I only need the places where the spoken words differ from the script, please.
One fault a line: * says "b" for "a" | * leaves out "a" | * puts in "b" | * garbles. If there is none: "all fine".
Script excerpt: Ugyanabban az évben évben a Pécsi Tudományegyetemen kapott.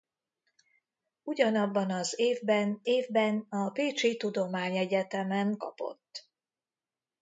all fine